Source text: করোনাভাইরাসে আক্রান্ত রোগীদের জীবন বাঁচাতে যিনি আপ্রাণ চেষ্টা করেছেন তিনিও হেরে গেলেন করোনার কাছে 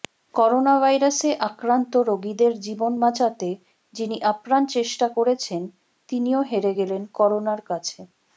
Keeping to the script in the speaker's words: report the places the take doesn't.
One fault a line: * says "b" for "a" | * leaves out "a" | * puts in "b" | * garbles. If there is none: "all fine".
all fine